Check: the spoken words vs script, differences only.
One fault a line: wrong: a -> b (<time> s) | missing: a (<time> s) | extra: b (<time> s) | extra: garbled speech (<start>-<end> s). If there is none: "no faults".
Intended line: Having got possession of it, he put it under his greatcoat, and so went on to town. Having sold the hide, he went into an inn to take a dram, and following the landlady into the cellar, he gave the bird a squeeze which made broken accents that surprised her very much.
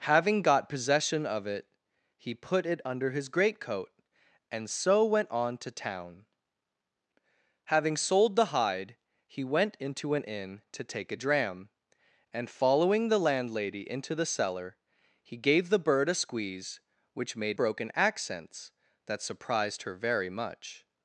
no faults